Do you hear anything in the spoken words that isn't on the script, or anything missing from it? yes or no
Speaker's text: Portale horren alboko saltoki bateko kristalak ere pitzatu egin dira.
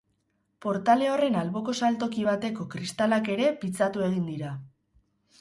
no